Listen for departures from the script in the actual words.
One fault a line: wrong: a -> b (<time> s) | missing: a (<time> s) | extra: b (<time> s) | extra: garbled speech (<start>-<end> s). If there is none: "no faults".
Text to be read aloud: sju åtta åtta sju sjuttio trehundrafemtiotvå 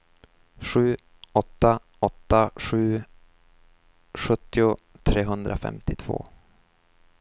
no faults